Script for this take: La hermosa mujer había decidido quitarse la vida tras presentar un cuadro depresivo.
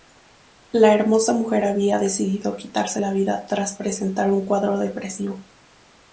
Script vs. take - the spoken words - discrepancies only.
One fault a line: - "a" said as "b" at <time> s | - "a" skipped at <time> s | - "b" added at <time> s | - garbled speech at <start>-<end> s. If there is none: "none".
none